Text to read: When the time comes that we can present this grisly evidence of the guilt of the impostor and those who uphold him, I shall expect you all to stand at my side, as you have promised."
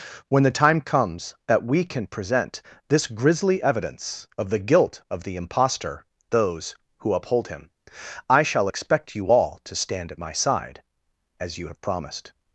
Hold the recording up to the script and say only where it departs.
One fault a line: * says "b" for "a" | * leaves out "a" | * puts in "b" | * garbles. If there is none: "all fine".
* leaves out "and"